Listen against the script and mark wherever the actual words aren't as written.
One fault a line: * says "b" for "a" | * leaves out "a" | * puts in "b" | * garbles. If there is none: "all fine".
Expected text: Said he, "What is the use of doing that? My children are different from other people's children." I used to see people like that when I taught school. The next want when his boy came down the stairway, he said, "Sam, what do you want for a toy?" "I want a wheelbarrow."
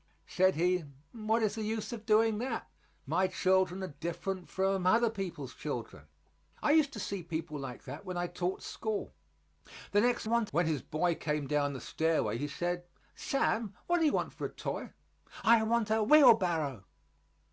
all fine